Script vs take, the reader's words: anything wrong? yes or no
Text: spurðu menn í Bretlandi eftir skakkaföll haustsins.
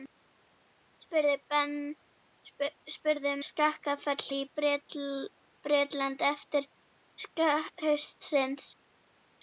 yes